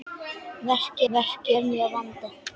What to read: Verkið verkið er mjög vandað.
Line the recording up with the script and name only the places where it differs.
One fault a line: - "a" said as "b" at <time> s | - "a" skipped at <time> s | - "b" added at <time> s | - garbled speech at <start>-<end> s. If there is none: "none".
none